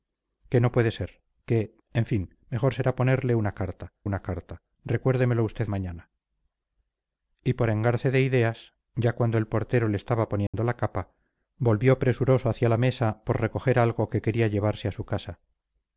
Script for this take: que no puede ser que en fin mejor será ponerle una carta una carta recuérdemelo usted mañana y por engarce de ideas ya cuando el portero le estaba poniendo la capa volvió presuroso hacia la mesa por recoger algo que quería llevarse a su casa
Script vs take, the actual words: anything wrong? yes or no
no